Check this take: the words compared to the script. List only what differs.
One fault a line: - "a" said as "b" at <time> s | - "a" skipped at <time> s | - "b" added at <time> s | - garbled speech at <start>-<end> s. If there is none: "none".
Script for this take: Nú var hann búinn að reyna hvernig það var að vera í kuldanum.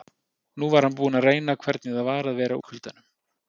none